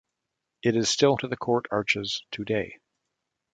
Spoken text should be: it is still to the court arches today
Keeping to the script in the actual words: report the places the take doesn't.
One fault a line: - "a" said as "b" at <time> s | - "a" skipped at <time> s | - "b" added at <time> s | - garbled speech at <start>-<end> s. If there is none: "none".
none